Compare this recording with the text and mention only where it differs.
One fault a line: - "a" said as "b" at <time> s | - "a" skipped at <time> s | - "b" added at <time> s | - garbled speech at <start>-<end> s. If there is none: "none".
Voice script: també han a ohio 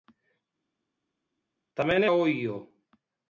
none